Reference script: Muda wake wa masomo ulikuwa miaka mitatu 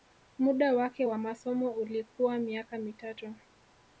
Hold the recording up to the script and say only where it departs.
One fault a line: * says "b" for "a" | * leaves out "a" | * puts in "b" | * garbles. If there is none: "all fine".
all fine